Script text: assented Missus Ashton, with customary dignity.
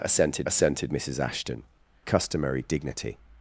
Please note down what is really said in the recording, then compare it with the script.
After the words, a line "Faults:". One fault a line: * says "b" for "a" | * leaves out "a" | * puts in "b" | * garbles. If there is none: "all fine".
assented assented Missus Ashton, customary dignity.
Faults:
* puts in "assented"
* leaves out "with"